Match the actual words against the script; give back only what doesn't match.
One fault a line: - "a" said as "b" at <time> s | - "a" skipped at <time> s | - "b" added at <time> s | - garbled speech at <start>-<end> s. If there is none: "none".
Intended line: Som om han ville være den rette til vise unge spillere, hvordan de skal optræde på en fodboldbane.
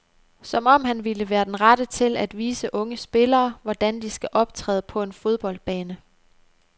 - "at" added at 2.2 s